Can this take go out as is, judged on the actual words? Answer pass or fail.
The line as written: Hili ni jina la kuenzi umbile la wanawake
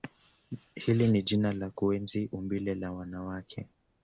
pass